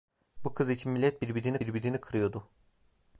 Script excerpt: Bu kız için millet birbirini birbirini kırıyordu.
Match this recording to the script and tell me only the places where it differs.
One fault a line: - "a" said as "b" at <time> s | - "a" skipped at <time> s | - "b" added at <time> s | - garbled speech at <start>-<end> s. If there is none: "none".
none